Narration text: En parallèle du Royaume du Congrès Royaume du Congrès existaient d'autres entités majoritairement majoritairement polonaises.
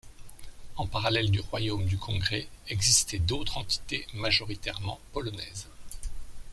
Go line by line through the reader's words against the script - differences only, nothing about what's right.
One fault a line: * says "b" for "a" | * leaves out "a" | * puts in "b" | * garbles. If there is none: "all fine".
* leaves out "Royaume du Congrès"
* leaves out "majoritairement"